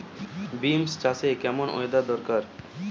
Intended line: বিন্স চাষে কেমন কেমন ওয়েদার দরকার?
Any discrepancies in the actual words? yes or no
yes